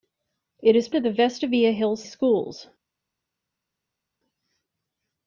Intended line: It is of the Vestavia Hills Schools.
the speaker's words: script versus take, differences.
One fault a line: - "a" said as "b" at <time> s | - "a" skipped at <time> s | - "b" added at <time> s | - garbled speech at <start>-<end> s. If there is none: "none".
none